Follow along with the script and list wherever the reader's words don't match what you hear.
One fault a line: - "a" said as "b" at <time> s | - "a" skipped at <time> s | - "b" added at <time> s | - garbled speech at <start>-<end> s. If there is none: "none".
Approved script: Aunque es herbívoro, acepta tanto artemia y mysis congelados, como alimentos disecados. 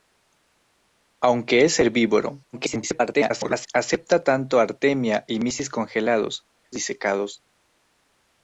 - garbled speech at 2.5-3.7 s
- "como alimentos" skipped at 6.5 s